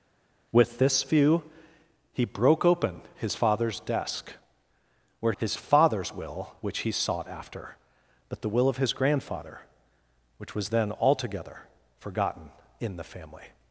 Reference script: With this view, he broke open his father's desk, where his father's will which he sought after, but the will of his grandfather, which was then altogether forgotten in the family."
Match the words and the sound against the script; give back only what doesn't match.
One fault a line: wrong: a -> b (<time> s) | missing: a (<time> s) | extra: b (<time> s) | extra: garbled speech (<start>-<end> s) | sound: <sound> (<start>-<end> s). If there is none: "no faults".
no faults